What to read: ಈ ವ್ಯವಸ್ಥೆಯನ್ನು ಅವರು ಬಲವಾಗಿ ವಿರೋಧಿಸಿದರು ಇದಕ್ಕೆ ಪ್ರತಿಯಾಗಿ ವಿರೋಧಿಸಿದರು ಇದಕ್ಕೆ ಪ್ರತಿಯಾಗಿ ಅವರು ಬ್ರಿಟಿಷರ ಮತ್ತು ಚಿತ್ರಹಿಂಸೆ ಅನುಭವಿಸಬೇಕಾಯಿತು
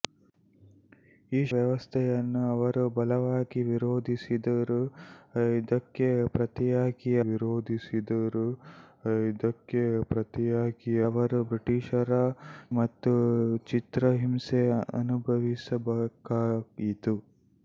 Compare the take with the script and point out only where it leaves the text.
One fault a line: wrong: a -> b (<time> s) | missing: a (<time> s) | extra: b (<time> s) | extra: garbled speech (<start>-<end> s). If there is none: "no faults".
no faults